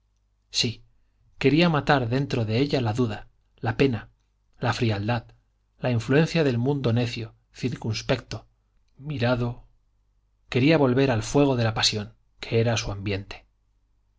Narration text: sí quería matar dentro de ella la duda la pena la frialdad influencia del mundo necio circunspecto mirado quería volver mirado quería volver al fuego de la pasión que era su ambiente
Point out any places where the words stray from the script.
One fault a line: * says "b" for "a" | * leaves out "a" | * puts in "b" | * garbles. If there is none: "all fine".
* puts in "la"
* leaves out "mirado quería volver"